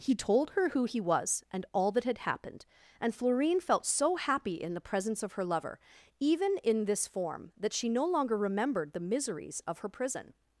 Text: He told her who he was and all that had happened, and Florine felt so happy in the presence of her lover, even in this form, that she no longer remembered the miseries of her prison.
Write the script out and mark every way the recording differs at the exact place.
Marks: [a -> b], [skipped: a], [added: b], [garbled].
He told her who he was and all that had happened, and Florine felt so happy in the presence of her lover, even in this form, that she no longer remembered the miseries of her prison.